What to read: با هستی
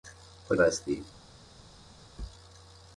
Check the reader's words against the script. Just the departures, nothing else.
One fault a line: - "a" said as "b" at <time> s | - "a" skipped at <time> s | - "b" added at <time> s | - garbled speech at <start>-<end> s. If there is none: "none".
none